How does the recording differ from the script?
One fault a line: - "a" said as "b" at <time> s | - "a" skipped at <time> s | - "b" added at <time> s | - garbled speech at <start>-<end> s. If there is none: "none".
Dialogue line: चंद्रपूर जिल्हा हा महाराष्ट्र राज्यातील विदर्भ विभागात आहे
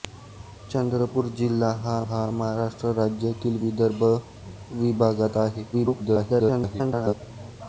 - "हा" added at 2.1 s
- garbled speech at 5.7-7.1 s